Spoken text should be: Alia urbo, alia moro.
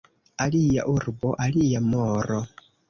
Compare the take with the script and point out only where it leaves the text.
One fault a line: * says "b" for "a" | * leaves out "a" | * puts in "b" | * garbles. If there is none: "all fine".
all fine